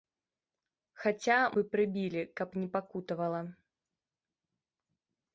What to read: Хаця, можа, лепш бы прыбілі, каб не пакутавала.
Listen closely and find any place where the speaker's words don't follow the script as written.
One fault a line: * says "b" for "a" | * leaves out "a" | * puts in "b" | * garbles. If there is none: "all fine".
* leaves out "можа лепш"